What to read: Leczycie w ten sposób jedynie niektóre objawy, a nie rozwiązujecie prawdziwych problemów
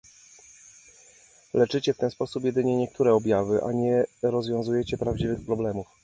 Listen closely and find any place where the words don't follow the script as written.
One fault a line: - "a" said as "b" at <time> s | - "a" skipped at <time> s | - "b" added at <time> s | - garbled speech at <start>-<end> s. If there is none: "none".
none